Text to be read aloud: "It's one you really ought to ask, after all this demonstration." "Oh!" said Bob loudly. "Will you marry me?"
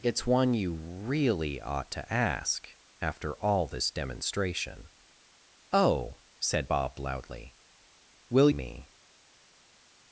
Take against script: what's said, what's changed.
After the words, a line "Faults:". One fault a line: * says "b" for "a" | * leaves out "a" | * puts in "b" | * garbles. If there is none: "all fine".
"It's one you really ought to ask, after all this demonstration." "Oh!" said Bob loudly. "Will me?"
Faults:
* leaves out "you marry"